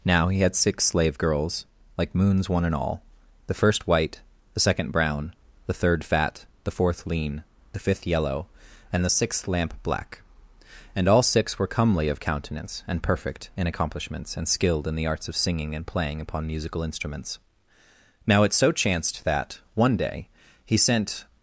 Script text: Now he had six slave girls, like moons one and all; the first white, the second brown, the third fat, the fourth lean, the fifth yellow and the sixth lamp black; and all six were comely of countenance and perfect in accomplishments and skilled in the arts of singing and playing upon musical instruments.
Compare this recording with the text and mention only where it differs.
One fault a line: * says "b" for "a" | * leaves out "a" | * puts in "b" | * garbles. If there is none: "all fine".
* puts in "Now it so chanced that one day he sent"